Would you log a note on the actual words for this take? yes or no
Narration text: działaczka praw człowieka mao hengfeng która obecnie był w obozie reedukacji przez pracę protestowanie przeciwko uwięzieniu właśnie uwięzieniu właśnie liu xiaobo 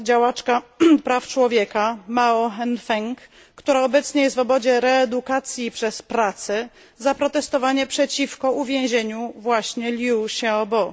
yes